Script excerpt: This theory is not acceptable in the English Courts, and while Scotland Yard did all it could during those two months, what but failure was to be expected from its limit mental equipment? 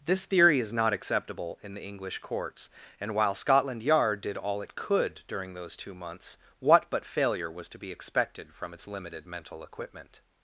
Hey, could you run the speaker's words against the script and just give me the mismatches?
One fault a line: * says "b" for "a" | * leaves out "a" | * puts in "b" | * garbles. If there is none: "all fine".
* says "limited" for "limit"